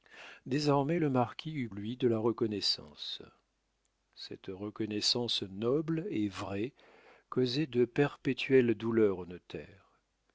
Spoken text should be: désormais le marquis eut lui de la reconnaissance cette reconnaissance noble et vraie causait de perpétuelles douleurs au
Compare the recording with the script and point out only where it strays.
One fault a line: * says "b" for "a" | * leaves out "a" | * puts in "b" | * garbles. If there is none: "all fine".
all fine